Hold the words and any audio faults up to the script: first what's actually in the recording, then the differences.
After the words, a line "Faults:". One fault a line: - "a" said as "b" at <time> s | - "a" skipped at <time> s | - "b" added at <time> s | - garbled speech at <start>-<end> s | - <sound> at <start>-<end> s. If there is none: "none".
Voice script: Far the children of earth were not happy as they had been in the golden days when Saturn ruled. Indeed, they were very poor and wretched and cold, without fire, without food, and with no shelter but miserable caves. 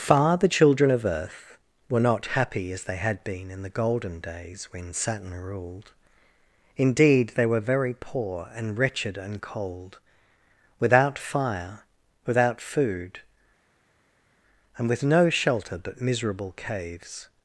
Far the children of earth were not happy as they had been in the golden days when Saturn ruled. Indeed, they were very poor and wretched and cold, without fire, without food, and with no shelter but miserable caves.
Faults:
none